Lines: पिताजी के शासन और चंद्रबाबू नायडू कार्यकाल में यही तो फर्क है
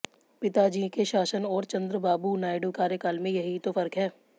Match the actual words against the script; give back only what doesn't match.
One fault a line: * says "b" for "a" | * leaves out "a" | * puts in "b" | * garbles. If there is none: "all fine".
all fine